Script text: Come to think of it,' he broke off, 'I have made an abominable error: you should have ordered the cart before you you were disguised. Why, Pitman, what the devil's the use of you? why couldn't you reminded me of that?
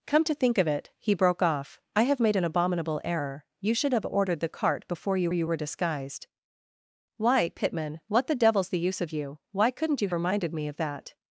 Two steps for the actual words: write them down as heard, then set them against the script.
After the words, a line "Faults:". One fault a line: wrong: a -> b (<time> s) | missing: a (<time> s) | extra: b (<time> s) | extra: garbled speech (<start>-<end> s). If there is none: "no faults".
Come to think of it,' he broke off, 'I have made an abominable error: you should have ordered the cart before you you were disguised. Why, Pitman, what the devil's the use of you? why couldn't you reminded me of that?
Faults:
no faults